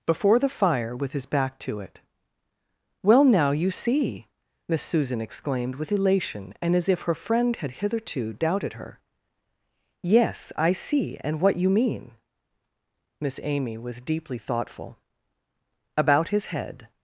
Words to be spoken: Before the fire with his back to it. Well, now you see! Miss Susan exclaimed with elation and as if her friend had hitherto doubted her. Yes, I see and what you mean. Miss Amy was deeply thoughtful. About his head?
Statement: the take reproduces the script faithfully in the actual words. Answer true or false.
true